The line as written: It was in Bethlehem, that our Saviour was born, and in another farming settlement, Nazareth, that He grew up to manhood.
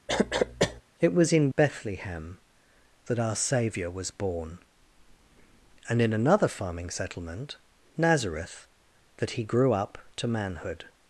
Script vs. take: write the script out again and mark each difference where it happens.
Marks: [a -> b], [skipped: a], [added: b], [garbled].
It was in Bethlehem, that our Saviour was born, and in another farming settlement, Nazareth, that He grew up to manhood.